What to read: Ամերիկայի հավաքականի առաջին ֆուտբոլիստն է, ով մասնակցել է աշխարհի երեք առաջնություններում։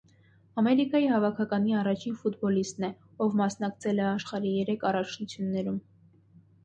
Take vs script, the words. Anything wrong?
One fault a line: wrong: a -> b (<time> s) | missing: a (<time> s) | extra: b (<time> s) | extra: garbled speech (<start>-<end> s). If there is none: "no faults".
no faults